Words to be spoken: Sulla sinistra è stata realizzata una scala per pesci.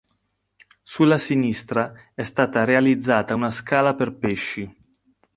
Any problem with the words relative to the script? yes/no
no